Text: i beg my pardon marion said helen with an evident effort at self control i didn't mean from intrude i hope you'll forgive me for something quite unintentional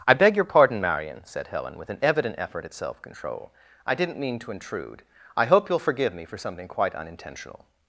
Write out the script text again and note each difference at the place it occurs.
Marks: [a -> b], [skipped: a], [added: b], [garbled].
i beg [my -> your] pardon marion said helen with an evident effort at self control i didn't mean [from -> to] intrude i hope you'll forgive me for something quite unintentional